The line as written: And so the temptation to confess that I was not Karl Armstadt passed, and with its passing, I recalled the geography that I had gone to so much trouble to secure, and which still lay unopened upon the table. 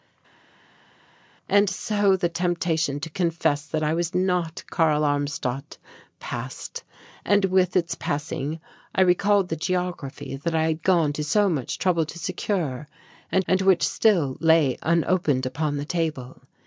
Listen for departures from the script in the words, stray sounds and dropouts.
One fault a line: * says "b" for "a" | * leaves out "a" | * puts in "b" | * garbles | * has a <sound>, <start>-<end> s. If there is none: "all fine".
* puts in "and"